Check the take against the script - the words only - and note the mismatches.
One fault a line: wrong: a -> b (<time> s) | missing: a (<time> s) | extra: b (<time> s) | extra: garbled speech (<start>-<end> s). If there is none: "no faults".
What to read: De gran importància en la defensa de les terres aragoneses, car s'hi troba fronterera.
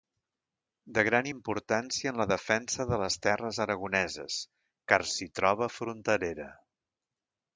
no faults